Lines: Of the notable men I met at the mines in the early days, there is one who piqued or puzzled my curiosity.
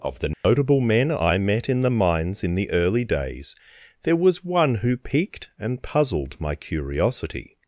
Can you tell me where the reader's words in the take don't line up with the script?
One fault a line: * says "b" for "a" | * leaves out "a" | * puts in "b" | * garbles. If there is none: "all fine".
* says "in" for "at"
* says "was" for "is"
* says "and" for "or"